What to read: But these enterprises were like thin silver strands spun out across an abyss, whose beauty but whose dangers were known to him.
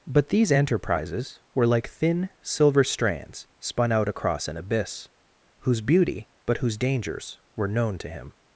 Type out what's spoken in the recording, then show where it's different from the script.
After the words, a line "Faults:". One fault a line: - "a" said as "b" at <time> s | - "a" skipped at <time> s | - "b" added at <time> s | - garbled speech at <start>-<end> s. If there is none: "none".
But these enterprises were like thin silver strands spun out across an abyss, whose beauty but whose dangers were known to him.
Faults:
none